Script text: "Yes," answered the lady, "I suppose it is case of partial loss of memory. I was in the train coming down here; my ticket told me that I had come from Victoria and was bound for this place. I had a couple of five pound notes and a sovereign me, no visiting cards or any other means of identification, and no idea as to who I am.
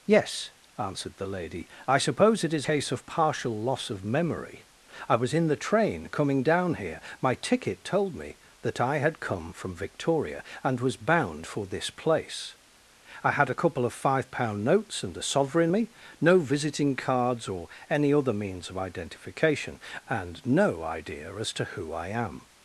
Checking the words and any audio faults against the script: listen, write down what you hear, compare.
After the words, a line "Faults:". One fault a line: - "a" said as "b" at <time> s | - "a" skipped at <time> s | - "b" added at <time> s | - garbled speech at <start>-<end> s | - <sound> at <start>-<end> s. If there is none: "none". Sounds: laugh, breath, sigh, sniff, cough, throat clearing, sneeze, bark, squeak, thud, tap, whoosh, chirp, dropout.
"Yes," answered the lady, "I suppose it is case of partial loss of memory. I was in the train coming down here; my ticket told me that I had come from Victoria and was bound for this place. I had a couple of five pound notes and a sovereign me, no visiting cards or any other means of identification, and no idea as to who I am.
Faults:
none